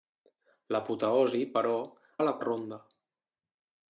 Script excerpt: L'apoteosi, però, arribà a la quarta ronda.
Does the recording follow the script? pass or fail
fail